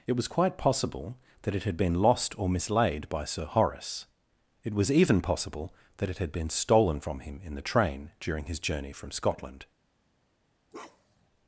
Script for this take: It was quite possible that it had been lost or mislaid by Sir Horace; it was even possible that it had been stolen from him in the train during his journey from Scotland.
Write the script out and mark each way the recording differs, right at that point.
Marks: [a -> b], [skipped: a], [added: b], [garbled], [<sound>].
It was quite possible that it had been lost or mislaid by Sir Horace; it was even possible that it had been stolen from him in the train during his journey from Scotland. [bark]